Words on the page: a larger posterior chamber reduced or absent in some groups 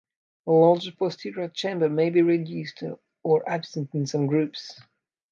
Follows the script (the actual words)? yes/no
no